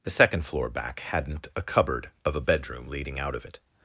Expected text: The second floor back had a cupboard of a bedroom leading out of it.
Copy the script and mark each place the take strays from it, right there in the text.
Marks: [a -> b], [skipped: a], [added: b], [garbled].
The second floor back [had -> hadn't] a cupboard of a bedroom leading out of it.